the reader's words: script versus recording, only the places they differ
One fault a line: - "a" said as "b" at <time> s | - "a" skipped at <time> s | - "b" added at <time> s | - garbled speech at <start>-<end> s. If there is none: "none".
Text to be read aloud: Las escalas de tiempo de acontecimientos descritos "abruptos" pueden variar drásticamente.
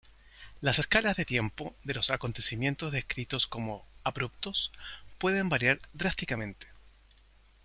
- "los" added at 1.9 s
- "como" added at 3.5 s